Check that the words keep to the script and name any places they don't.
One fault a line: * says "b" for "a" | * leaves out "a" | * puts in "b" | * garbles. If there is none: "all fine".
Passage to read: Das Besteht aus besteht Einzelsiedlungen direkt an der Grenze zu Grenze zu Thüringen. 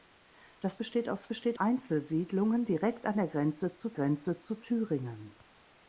all fine